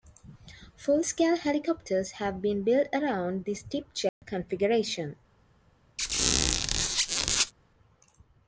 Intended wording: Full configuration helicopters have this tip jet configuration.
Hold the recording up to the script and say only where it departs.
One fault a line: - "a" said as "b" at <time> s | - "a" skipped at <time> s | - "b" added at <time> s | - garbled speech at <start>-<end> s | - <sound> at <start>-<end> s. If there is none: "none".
- "configuration" said as "scale" at 1.0 s
- "been built around" added at 2.4 s
- dropout at 4.1-4.2 s
- squeak at 6.0-7.5 s